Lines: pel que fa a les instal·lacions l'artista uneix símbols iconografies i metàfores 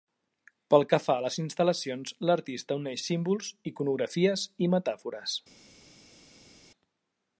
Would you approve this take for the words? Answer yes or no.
yes